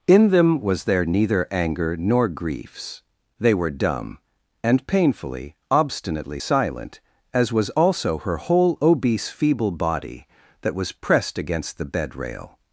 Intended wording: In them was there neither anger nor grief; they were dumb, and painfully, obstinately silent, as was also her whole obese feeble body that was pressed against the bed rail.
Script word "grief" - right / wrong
wrong